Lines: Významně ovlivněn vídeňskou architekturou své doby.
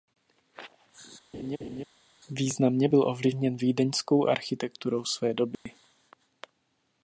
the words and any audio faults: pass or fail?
fail